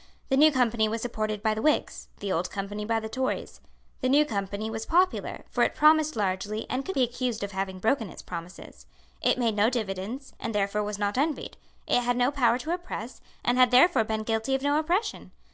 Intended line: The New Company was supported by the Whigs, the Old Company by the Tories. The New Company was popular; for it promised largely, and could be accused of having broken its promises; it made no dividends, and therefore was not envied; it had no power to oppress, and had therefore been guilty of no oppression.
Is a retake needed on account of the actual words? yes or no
no